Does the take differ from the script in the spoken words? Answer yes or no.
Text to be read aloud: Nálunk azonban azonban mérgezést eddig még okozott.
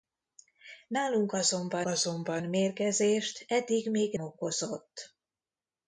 no